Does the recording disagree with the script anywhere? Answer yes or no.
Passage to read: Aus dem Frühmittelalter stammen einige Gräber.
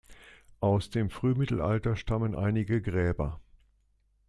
no